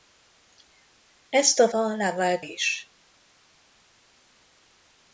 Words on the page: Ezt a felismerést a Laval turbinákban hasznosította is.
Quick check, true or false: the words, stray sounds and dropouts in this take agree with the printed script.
false